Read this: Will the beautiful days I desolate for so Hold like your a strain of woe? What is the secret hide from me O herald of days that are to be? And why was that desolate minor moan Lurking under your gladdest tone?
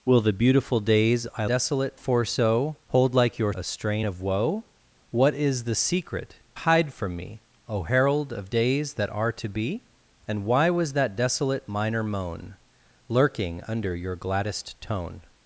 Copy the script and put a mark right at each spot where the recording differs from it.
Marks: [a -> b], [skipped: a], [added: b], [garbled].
Will the beautiful days I desolate for so Hold like your a strain of woe? What is the secret hide from me O herald of days that are to be? And why was that desolate minor moan Lurking under your gladdest tone?